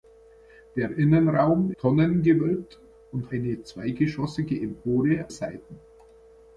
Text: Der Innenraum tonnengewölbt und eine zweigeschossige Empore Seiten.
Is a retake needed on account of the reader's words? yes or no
no